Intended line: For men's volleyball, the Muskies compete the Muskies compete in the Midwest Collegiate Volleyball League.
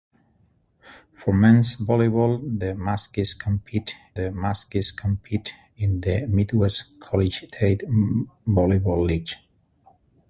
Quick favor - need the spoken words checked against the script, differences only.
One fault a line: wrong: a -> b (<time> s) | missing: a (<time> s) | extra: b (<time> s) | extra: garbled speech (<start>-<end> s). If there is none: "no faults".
no faults